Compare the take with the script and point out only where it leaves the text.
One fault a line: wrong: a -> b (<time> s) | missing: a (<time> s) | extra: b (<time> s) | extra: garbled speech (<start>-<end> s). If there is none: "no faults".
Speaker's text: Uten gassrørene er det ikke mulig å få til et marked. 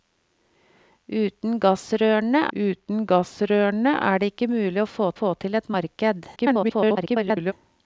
extra: uten gassrørene (2.5 s)
extra: få (5.2 s)
extra: garbled speech (6.4-7.5 s)